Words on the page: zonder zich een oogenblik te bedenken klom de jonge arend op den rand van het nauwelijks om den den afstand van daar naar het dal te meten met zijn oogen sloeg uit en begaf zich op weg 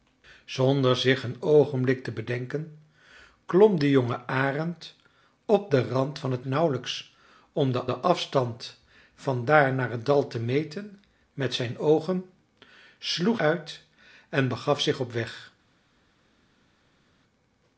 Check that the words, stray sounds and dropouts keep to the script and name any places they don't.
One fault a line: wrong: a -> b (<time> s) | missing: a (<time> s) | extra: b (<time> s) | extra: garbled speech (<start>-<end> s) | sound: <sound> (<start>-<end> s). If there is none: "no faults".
no faults